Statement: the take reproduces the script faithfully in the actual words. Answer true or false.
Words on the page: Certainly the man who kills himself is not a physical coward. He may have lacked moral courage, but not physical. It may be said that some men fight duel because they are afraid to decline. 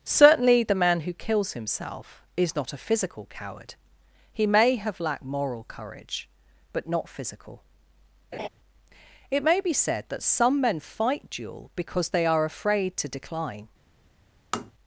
true